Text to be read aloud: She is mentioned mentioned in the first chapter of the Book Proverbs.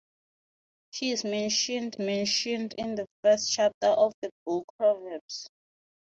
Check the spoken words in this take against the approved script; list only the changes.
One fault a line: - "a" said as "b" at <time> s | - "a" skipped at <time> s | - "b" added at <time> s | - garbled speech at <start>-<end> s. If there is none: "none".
none